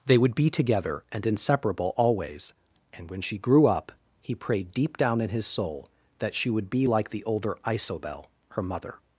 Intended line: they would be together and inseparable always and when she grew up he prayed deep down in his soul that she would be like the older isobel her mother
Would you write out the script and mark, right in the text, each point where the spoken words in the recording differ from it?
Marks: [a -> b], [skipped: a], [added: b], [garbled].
they would be together and inseparable always and when she grew up he prayed deep down in his soul that she would be like the older isobel her mother